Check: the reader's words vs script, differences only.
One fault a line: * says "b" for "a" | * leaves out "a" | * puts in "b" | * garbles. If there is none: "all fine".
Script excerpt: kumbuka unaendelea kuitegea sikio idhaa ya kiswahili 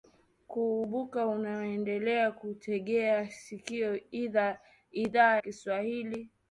* leaves out "ya"